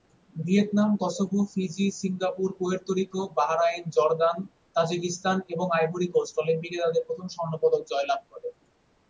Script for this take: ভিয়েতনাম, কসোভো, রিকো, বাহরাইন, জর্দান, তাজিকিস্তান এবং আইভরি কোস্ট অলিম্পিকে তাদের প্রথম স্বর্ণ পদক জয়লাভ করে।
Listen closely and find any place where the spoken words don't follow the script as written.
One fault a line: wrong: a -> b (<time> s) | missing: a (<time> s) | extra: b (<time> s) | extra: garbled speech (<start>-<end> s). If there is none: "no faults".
extra: ফিজি সিঙ্গাপুর পুয়ের্তো (1.5 s)